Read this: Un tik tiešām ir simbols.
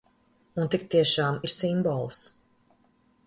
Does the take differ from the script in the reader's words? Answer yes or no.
no